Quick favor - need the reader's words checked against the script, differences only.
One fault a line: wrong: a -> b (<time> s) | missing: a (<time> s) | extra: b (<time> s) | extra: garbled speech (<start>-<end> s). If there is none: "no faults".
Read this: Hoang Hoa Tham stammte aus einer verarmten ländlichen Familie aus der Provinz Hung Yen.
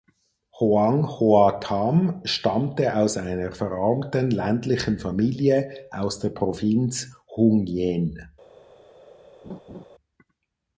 no faults